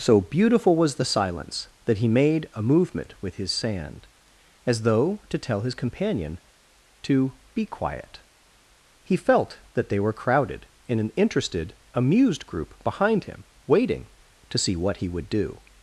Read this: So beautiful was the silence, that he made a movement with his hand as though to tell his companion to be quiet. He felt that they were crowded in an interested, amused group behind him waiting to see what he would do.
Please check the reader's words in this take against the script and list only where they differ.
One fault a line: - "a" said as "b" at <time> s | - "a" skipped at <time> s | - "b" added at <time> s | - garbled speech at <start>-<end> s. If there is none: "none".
- "hand" said as "sand" at 3.5 s